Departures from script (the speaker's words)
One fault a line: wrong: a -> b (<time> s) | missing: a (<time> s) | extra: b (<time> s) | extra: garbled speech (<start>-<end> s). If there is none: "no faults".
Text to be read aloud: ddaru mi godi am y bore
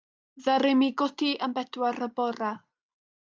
extra: bedwar (1.6 s)